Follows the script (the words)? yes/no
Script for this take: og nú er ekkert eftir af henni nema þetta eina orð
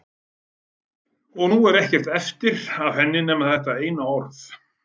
yes